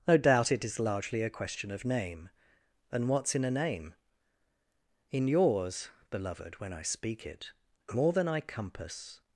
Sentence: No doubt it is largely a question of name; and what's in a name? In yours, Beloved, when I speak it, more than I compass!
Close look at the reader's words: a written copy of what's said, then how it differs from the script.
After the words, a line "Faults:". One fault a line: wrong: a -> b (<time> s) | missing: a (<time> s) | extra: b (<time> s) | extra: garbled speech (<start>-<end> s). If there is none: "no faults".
No doubt it is largely a question of name; and what's in a name? In yours, Beloved, when I speak it, more than I compass!
Faults:
no faults